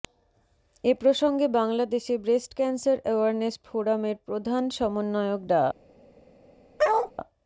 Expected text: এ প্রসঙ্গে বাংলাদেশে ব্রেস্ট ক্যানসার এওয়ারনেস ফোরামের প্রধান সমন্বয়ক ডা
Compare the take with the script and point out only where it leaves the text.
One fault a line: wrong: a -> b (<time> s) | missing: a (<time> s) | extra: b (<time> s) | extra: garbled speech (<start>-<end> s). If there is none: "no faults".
no faults